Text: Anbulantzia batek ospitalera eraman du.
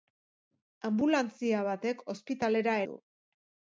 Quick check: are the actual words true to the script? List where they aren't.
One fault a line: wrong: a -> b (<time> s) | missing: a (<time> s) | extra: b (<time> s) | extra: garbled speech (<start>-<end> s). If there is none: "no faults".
missing: eraman (2.8 s)